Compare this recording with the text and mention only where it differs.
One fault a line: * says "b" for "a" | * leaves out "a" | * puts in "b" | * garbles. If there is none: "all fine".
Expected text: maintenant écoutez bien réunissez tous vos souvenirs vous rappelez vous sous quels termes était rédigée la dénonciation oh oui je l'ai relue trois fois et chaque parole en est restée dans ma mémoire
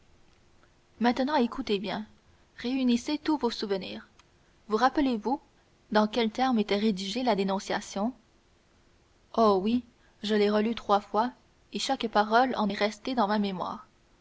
* says "dans" for "sous"